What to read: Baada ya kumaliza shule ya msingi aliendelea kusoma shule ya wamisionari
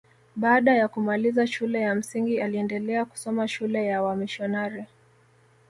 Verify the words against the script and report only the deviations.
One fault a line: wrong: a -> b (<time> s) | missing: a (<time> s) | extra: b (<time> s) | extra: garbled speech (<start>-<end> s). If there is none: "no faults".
no faults